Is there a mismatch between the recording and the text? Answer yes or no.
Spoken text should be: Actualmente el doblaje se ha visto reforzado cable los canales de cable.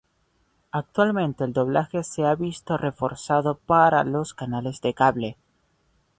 yes